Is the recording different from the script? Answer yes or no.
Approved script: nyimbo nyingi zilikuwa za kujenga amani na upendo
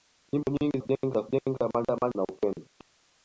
yes